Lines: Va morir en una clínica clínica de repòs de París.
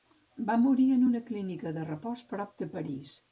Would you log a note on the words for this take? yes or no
yes